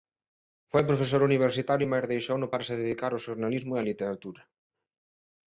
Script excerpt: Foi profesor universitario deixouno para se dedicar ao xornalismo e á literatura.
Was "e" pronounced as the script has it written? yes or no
yes